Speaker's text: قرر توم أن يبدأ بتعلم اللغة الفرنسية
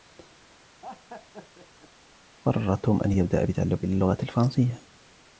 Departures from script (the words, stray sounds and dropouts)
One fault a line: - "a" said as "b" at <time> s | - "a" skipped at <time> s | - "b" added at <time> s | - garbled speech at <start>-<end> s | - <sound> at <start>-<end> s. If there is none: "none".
- laugh at 0.8-1.9 s